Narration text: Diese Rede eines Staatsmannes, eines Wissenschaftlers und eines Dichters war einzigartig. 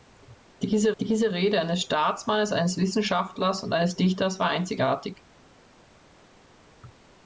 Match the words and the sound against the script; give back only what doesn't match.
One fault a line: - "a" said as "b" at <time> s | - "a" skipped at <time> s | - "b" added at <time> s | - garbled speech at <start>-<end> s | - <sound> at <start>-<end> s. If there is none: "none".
- "diese" added at 1.0 s